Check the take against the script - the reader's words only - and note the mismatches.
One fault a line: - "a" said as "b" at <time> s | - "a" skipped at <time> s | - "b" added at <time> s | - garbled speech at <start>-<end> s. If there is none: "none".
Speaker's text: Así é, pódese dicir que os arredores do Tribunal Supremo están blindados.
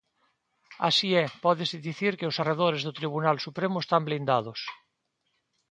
none